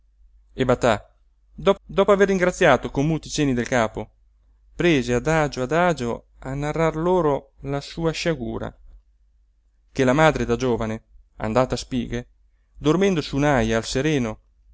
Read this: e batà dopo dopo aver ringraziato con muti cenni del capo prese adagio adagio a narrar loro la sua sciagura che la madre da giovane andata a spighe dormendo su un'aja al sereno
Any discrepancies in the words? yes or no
no